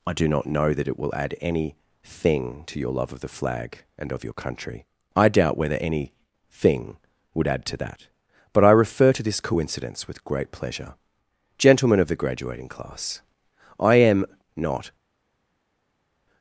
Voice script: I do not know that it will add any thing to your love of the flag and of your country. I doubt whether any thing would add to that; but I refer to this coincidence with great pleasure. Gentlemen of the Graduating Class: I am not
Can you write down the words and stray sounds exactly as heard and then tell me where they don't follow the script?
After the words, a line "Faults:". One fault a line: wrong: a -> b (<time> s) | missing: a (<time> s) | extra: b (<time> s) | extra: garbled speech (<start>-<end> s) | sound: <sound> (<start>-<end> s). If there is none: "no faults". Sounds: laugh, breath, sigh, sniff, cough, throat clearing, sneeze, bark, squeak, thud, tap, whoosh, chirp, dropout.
I do not know that it will add any thing to your love of the flag and of your country. I doubt whether any thing would add to that; but I refer to this coincidence with great pleasure. Gentlemen of the Graduating Class: I am not
Faults:
no faults